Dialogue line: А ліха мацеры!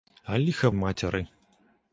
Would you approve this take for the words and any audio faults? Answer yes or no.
yes